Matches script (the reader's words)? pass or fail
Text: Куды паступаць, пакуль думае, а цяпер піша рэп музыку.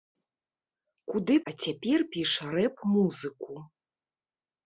fail